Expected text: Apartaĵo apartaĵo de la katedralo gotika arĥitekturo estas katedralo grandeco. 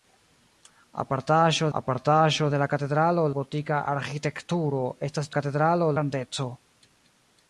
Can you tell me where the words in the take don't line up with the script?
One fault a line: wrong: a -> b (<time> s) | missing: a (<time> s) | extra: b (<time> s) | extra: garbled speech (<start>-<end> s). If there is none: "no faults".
no faults